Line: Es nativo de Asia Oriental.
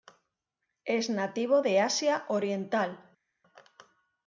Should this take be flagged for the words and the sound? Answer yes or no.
no